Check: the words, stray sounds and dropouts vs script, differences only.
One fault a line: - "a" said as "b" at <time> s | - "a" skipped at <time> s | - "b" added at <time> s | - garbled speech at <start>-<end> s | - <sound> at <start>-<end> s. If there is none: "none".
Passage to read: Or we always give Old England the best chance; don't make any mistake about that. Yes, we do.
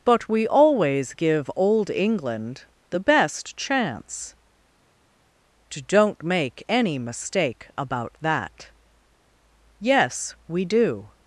- "Or" said as "But" at 0.0 s